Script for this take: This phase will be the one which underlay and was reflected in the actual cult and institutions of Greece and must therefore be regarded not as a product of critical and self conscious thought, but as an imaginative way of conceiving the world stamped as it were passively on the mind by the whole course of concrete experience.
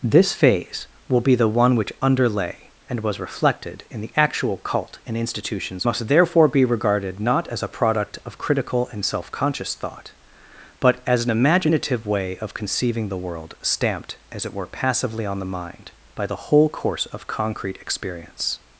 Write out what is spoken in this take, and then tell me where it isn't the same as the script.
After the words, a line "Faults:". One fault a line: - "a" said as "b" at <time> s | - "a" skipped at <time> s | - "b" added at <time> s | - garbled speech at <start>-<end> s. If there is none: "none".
This phase will be the one which underlay and was reflected in the actual cult and institutions must therefore be regarded not as a product of critical and self conscious thought, but as an imaginative way of conceiving the world stamped as it were passively on the mind by the whole course of concrete experience.
Faults:
- "of Greece and" skipped at 5.8 s